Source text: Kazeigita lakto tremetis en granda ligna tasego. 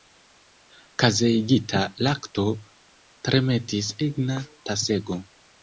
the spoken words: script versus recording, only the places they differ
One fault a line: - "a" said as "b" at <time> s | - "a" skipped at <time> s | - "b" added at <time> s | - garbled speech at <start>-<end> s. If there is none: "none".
- "en granda" skipped at 3.9 s